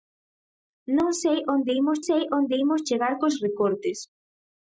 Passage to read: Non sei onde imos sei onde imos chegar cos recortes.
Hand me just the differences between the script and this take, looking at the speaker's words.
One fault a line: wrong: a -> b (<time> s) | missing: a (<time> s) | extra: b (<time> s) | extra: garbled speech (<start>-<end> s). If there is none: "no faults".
no faults